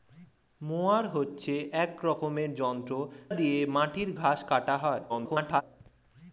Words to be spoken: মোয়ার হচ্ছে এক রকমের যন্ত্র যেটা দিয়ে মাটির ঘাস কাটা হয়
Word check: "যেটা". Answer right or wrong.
wrong